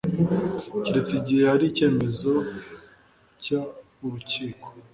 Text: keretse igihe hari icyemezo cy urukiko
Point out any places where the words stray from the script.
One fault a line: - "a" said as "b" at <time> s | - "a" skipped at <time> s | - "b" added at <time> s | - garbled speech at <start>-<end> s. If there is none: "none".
none